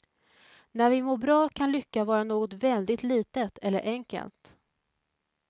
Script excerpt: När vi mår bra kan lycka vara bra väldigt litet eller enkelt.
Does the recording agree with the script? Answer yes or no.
no